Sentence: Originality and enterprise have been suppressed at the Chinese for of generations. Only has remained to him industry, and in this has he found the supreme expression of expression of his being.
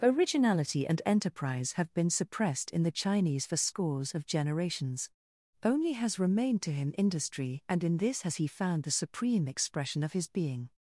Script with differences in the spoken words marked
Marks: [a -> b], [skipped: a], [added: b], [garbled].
Originality and enterprise have been suppressed [at -> in] the Chinese for [added: scores] of generations. Only has remained to him industry, and in this has he found the supreme expression of [skipped: expression of] his being.